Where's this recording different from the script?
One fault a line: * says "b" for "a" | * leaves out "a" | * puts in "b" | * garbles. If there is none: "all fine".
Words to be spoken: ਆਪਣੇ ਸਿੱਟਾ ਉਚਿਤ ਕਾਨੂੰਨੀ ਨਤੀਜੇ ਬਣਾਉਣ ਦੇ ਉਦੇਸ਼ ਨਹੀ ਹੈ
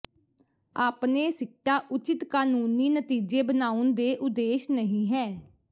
all fine